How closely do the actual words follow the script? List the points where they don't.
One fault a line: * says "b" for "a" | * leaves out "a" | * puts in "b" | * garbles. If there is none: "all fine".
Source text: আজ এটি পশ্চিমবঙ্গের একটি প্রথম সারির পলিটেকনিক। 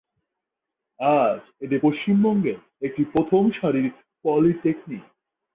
all fine